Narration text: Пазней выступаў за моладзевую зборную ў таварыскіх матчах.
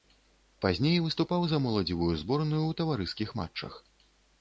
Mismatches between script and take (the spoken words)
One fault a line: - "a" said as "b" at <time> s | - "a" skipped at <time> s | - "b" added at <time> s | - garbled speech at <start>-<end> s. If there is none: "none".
none